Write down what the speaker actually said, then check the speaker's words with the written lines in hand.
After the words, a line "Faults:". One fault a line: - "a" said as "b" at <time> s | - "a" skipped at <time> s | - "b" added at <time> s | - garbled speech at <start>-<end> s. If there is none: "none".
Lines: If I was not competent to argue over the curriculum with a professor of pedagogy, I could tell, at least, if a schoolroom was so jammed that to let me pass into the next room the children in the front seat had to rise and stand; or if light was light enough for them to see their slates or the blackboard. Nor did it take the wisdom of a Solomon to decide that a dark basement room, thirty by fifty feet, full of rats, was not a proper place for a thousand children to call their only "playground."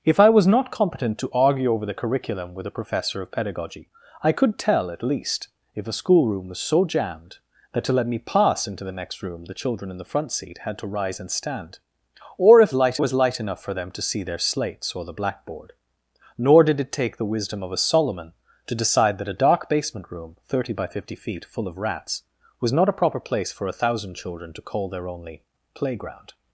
If I was not competent to argue over the curriculum with a professor of pedagogy, I could tell, at least, if a schoolroom was so jammed that to let me pass into the next room the children in the front seat had to rise and stand; or if light was light enough for them to see their slates or the blackboard. Nor did it take the wisdom of a Solomon to decide that a dark basement room, thirty by fifty feet, full of rats, was not a proper place for a thousand children to call their only "playground."
Faults:
none